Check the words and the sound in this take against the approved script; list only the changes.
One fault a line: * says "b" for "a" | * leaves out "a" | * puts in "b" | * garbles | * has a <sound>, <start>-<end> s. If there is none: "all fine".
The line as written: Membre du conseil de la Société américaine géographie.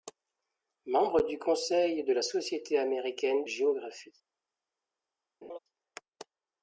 * has a laugh, 5.4-5.6 s